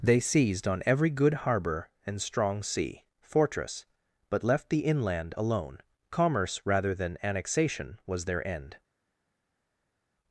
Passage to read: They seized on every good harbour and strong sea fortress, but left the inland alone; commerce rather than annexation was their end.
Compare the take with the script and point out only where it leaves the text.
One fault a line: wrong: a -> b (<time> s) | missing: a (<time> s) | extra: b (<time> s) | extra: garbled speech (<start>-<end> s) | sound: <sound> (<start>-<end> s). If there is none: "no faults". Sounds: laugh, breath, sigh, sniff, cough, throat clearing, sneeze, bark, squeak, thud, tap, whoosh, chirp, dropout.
no faults